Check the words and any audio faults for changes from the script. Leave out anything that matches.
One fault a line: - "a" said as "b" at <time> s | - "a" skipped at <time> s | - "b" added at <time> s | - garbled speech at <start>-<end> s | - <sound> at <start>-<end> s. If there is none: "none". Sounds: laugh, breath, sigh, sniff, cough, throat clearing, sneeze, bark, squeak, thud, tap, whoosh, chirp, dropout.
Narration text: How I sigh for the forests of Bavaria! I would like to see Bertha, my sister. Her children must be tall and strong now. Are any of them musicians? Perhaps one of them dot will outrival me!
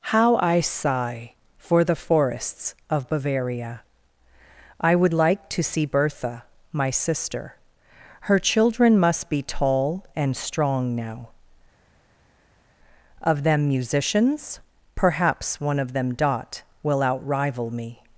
- "Are any" skipped at 11.3 s